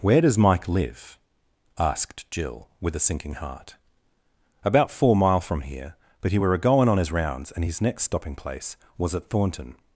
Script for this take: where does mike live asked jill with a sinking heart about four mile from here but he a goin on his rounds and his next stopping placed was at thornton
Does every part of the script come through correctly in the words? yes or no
no